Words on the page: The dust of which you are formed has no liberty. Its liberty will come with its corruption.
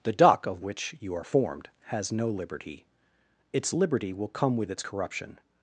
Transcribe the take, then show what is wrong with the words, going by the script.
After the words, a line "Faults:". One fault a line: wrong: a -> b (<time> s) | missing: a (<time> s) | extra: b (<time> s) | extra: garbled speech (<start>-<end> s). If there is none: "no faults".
The duck of which you are formed has no liberty. Its liberty will come with its corruption.
Faults:
wrong: dust -> duck (0.1 s)